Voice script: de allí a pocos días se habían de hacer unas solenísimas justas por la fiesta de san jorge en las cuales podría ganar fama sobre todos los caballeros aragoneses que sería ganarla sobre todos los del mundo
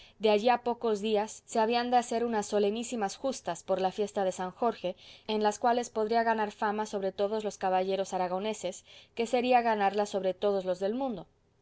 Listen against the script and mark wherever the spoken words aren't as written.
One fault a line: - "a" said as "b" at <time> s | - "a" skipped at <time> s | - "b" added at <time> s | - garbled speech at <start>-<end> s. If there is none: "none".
none